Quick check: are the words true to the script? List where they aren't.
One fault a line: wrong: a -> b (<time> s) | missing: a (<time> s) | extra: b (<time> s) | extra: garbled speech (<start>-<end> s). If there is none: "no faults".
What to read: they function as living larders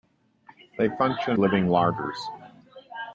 missing: as (1.4 s)